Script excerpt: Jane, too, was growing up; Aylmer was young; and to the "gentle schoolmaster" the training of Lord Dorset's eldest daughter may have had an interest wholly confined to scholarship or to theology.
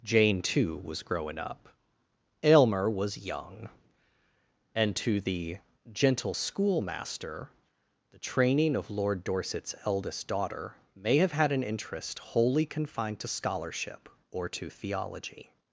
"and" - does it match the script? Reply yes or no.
yes